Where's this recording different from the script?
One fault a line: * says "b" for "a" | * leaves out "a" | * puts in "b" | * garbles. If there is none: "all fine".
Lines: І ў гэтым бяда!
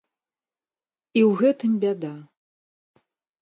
all fine